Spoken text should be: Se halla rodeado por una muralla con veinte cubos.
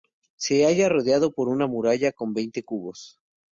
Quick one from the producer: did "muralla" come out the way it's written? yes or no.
yes